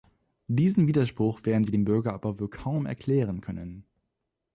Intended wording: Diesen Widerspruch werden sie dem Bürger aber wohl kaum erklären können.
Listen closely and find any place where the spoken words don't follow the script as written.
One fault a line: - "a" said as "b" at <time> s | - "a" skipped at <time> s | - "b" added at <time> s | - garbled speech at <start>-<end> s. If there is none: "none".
none